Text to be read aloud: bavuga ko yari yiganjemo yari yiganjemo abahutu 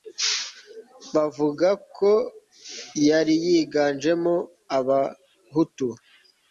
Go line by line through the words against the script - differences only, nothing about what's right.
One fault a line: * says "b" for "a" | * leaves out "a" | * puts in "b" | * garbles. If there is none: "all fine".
* leaves out "yari yiganjemo"